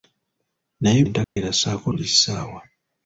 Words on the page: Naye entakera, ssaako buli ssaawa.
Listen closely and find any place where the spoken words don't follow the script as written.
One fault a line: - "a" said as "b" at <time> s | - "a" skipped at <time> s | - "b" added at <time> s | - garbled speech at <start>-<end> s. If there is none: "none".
none